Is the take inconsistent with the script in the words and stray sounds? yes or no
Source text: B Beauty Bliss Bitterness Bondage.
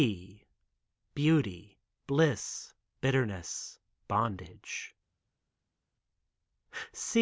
no